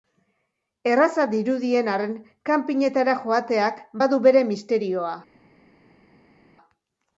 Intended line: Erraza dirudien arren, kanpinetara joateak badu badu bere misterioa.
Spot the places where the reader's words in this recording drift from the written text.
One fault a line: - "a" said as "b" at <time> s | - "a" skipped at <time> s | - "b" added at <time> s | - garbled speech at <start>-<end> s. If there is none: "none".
- "badu" skipped at 4.2 s